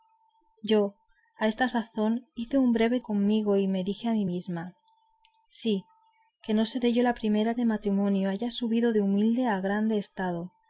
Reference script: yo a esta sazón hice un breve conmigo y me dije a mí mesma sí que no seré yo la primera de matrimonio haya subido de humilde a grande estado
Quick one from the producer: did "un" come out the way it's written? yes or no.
yes